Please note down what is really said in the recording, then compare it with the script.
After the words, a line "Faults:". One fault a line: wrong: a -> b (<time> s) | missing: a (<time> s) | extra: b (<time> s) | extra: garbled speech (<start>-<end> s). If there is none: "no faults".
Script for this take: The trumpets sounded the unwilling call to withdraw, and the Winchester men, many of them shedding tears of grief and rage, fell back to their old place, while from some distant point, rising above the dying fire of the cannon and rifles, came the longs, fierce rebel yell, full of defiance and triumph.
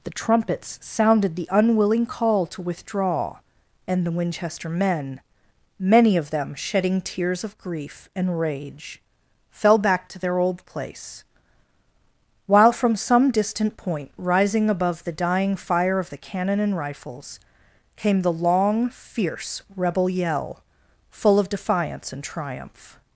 The trumpets sounded the unwilling call to withdraw, and the Winchester men, many of them shedding tears of grief and rage, fell back to their old place, while from some distant point, rising above the dying fire of the cannon and rifles, came the long, fierce rebel yell, full of defiance and triumph.
Faults:
wrong: longs -> long (18.3 s)